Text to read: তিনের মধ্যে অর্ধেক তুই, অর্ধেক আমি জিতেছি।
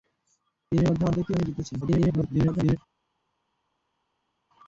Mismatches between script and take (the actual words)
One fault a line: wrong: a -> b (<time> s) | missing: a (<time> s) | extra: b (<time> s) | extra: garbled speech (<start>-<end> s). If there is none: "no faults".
missing: অর্ধেক (1.4 s)
extra: garbled speech (1.8-2.8 s)